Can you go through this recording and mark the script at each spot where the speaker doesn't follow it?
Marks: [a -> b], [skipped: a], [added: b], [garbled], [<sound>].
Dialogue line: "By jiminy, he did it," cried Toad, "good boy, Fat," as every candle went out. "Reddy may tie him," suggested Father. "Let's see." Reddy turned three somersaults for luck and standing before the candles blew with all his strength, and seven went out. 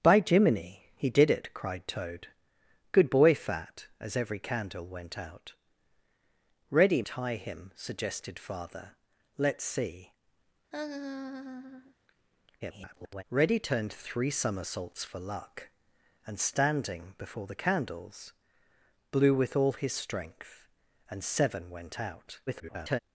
"By jiminy, he did it," cried Toad, "good boy, Fat," as every candle went out. "Reddy [skipped: may] tie him," suggested Father. "Let's see." [laugh] [garbled] Reddy turned three somersaults for luck and standing before the candles blew with all his strength, and seven went out. [garbled]